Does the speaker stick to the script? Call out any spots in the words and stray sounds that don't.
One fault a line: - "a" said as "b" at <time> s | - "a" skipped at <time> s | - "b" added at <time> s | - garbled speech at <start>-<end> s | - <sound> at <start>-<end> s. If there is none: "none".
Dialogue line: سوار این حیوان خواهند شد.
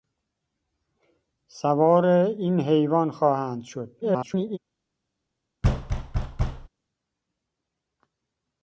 - garbled speech at 4.0-4.6 s
- thud at 5.6-6.7 s